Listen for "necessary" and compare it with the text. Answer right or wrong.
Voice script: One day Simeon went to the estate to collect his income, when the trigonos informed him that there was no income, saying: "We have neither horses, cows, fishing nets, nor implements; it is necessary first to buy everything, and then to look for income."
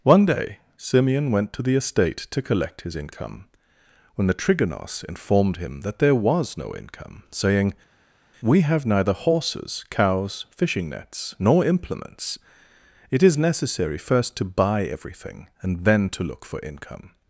right